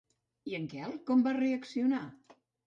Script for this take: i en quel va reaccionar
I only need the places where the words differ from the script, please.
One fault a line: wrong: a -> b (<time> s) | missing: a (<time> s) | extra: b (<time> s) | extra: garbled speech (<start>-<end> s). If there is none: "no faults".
extra: com (1.1 s)